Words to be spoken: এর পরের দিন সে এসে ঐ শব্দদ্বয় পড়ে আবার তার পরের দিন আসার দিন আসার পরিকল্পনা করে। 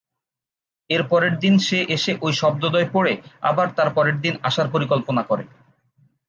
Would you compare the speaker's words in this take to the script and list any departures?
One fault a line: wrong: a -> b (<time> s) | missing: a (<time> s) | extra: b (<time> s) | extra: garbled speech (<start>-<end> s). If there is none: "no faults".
missing: দিন আসার (4.7 s)